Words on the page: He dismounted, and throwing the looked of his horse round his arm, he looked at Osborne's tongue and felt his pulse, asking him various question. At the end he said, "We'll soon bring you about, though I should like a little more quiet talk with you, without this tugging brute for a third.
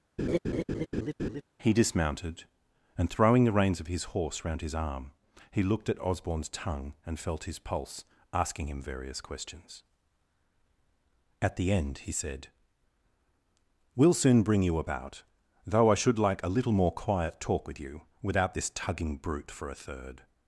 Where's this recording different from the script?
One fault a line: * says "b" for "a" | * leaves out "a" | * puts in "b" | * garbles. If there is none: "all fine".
* says "reins" for "looked"
* says "questions" for "question"